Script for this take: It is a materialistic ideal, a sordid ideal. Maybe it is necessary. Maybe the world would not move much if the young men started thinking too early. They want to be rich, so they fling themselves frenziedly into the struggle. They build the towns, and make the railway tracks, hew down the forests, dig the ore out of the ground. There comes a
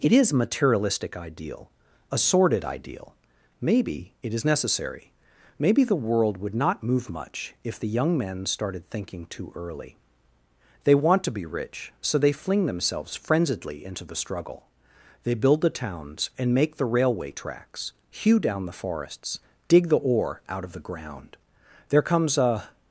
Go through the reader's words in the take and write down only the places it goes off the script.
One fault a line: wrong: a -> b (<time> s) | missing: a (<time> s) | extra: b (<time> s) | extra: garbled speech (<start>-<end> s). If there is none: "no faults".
no faults